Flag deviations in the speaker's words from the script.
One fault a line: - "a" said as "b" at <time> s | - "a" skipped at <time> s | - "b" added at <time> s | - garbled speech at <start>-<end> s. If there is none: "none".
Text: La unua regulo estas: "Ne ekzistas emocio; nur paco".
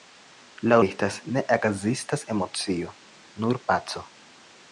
- "unua regulo" skipped at 0.8 s